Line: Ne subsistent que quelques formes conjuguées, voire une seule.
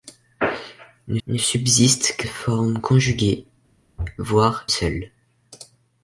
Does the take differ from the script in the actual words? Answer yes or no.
yes